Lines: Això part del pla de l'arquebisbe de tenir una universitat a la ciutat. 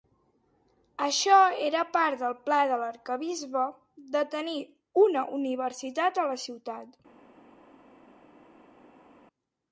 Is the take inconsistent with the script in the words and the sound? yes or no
yes